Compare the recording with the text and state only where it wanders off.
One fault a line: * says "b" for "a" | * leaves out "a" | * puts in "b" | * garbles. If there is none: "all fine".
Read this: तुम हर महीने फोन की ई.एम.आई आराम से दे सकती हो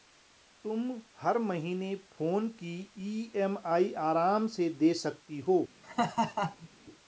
all fine